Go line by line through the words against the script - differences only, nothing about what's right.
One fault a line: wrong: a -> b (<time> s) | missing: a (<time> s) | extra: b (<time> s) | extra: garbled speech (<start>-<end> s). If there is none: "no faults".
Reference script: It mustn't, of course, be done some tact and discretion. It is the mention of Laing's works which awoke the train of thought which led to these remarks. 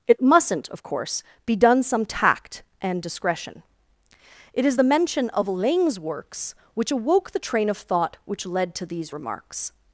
no faults